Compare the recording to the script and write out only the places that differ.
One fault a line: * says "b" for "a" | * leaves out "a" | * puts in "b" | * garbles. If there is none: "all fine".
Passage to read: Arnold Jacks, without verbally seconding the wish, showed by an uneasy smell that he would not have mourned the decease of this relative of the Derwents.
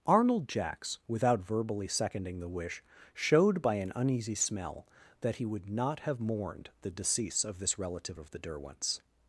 all fine